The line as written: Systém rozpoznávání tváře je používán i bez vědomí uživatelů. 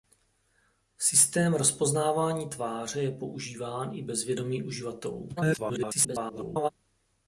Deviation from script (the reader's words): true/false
true